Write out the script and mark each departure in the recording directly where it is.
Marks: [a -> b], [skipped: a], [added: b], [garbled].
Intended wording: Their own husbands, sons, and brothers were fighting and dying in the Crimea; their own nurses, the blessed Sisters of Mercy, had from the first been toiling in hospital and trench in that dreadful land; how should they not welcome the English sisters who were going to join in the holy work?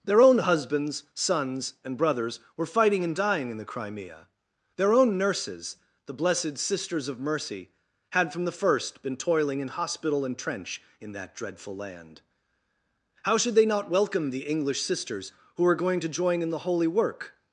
Their own husbands, sons, and brothers were fighting and dying in the Crimea; their own nurses, the blessed Sisters of Mercy, had from the first been toiling in hospital and trench in that dreadful land; how should they not welcome the English sisters who were going to join in the holy work?